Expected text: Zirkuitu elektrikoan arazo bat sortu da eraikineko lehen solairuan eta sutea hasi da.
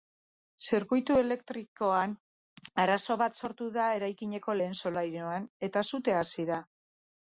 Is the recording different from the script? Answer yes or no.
no